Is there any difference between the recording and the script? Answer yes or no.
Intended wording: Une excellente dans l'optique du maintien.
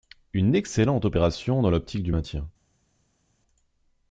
yes